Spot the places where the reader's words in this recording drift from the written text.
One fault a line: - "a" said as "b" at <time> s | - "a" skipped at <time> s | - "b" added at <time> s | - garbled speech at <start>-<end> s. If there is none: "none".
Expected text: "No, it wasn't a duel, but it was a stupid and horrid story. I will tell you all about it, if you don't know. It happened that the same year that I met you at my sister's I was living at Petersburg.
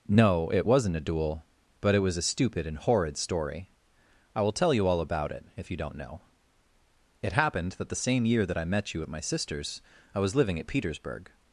none